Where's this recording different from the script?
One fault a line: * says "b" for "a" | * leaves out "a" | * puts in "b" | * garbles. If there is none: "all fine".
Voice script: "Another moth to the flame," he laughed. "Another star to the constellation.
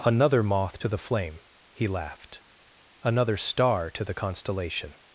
all fine